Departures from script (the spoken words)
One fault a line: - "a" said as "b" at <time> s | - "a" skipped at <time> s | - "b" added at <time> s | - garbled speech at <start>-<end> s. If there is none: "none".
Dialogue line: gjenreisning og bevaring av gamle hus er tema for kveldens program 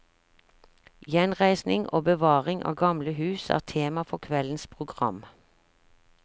none